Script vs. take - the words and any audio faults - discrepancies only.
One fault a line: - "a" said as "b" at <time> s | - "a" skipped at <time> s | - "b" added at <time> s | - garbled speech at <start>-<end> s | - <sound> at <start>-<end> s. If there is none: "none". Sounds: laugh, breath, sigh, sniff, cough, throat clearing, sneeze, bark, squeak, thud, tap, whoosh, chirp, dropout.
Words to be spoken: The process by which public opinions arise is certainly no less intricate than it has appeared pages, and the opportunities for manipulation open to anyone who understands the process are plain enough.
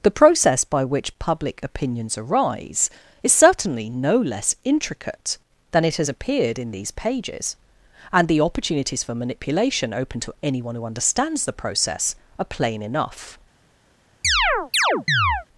- "in these" added at 6.6 s
- chirp at 14.2-15.5 s